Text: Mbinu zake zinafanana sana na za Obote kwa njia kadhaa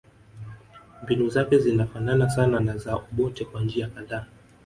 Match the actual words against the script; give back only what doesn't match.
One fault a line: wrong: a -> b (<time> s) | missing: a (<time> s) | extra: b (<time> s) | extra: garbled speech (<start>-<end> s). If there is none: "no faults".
no faults